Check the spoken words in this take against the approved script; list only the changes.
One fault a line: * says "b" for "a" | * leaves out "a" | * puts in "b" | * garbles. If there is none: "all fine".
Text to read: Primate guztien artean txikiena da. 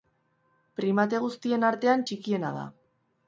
all fine